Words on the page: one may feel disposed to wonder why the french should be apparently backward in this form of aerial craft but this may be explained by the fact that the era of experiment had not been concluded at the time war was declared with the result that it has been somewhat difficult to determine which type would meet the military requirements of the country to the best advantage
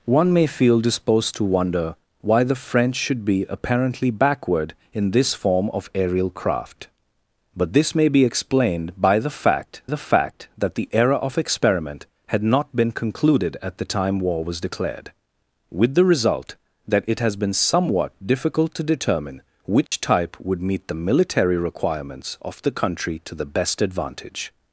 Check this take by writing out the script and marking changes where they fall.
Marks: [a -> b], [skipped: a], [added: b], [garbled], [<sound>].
one may feel disposed to wonder why the french should be apparently backward in this form of aerial craft but this may be explained by the fact [added: the fact] that the era of experiment had not been concluded at the time war was declared with the result that it has been somewhat difficult to determine which [dropout] type would meet the military requirements of the country to the best advantage